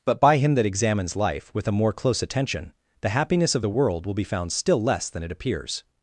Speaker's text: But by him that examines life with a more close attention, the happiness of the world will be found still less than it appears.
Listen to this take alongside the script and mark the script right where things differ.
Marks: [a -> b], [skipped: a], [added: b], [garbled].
But by him that examines life with a more close attention, the happiness of the world will be found still less than it appears.